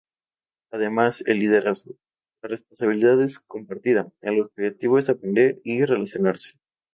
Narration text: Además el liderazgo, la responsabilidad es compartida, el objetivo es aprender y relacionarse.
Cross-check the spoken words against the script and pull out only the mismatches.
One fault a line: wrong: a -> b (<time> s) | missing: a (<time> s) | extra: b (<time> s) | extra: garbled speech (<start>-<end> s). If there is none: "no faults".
no faults